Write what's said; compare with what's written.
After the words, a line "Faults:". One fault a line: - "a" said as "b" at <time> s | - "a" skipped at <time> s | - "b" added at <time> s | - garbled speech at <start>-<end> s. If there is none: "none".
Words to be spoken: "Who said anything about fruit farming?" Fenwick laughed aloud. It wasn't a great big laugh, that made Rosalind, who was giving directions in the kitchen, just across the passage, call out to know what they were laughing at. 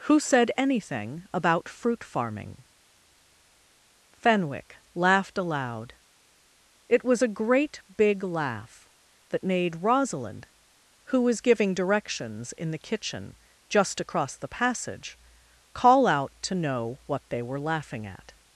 "Who said anything about fruit farming?" Fenwick laughed aloud. It was a great big laugh, that made Rosalind, who was giving directions in the kitchen, just across the passage, call out to know what they were laughing at.
Faults:
- "wasn't" said as "was" at 7.0 s